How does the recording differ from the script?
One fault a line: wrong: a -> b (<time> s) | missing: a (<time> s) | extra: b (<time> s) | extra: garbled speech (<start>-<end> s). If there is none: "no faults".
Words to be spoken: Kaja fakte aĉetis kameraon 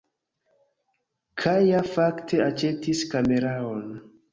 no faults